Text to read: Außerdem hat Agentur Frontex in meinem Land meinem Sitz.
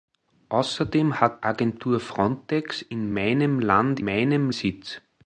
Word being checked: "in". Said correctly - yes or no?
yes